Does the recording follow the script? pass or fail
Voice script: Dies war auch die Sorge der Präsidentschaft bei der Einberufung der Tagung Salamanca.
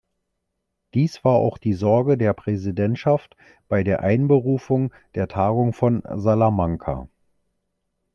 fail